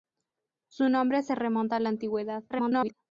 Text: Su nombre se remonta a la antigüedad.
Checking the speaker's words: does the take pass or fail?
fail